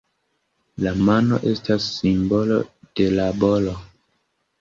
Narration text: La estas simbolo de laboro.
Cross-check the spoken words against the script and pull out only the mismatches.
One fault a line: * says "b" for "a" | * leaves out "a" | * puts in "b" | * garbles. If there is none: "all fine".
* puts in "mano"